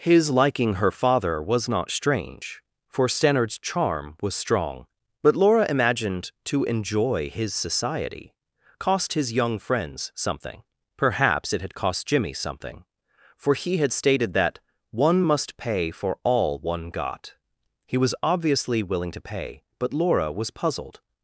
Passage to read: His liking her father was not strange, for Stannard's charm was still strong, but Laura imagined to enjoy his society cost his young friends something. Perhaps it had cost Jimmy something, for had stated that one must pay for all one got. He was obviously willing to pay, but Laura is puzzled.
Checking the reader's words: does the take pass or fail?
fail